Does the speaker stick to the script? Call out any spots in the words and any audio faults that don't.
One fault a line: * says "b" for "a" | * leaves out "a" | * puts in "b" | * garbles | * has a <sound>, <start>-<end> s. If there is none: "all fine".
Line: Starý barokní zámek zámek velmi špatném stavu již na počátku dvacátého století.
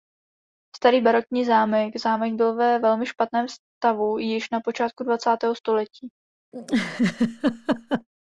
* puts in "byl ve"
* has a laugh, 6.5-8.1 s